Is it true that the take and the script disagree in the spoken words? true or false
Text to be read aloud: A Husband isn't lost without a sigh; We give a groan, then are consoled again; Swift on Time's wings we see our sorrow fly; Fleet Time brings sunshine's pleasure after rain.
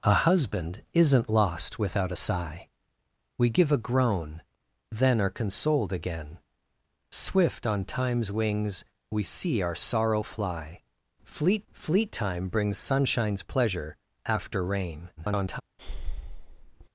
true